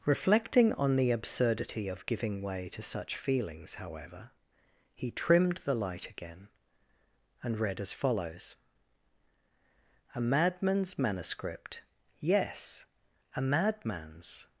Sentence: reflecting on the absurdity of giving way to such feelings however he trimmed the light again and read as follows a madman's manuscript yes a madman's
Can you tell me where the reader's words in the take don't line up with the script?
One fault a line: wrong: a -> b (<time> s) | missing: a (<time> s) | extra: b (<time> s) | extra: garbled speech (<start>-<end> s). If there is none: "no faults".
no faults